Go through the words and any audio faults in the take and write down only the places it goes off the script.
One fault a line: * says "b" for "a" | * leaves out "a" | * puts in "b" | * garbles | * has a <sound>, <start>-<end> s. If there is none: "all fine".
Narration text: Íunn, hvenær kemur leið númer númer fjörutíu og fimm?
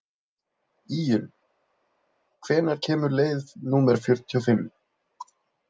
* leaves out "númer"